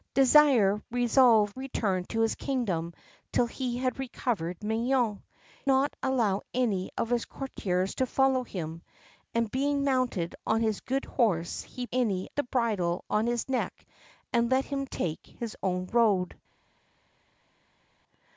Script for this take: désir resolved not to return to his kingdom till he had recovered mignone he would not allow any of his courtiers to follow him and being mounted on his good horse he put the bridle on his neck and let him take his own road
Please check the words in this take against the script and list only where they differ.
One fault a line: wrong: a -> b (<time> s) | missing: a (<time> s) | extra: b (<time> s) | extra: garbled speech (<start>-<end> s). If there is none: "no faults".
missing: not to (1.6 s)
missing: he would (5.2 s)
wrong: put -> any (11.9 s)